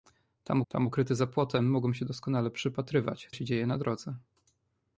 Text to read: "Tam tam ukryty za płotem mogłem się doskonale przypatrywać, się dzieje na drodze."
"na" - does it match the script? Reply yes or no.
yes